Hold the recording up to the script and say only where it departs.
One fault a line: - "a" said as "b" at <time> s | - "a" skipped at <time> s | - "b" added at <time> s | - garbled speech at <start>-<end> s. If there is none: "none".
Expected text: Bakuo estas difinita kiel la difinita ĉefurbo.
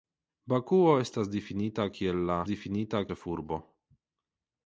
none